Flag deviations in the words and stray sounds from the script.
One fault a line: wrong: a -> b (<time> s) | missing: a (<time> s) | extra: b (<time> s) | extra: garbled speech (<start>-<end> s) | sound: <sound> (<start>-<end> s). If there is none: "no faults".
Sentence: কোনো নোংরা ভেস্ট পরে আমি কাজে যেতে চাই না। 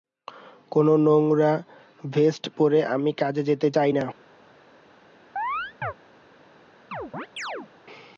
sound: chirp (5.4-5.9 s)
sound: chirp (6.9-7.7 s)